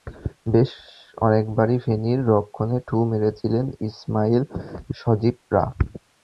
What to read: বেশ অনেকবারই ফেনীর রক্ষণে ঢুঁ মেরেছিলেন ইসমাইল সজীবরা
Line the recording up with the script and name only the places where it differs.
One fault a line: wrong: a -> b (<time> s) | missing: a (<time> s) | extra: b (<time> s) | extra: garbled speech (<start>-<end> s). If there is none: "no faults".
no faults